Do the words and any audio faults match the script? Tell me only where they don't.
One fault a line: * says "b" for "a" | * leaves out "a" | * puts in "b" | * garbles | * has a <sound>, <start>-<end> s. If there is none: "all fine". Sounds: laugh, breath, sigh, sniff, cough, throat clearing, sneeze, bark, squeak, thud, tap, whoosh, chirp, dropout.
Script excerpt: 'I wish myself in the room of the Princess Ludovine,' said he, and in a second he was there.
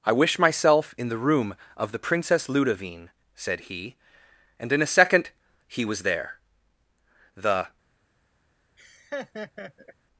* puts in "The"
* has a laugh, 8.8-9.9 s